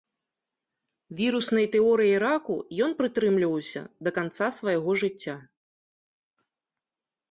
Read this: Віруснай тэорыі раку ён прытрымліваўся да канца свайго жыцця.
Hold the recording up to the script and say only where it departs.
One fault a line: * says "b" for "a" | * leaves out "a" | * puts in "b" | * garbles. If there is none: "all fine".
all fine